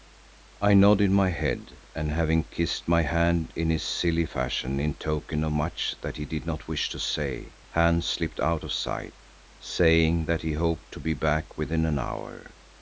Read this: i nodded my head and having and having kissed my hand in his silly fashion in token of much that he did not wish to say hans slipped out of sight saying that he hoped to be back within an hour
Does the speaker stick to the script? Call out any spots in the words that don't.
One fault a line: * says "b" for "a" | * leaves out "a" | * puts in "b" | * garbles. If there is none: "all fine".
* leaves out "and having"